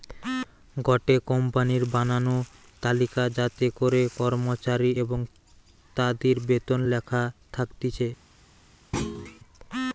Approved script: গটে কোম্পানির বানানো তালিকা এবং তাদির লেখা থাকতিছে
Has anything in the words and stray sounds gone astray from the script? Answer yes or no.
yes